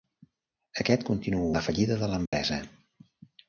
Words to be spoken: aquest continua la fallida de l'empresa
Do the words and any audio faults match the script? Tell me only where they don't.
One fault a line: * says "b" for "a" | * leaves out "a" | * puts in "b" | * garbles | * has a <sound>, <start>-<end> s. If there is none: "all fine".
* has a dropout, 2.3-2.3 s